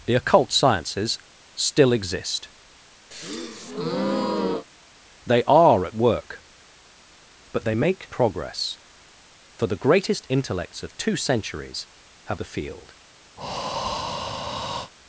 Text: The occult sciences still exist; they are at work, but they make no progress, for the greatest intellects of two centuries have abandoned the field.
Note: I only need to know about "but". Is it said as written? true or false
true